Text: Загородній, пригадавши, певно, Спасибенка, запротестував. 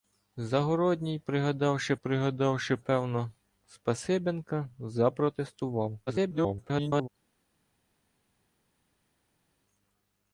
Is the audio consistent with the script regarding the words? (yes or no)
no